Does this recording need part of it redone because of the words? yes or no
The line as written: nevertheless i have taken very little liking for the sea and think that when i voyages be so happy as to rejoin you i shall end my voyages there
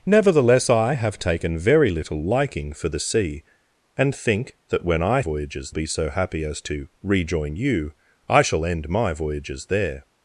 no